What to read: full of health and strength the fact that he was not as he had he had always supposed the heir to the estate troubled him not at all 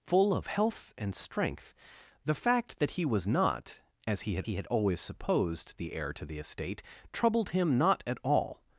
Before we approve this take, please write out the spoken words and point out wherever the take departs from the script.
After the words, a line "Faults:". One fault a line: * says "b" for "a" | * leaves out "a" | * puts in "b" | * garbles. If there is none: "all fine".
full of health and strength the fact that he was not as he had he had always supposed the heir to the estate troubled him not at all
Faults:
all fine